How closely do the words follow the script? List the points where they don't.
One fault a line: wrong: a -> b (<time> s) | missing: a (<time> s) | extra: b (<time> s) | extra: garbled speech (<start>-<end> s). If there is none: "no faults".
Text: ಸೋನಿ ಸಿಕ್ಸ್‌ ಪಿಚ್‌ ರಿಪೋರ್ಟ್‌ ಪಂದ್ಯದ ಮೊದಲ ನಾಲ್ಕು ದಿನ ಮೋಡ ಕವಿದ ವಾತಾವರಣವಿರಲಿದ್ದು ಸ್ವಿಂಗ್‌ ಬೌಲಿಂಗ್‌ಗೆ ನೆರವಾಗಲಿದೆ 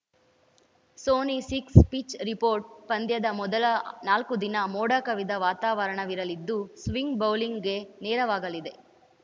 no faults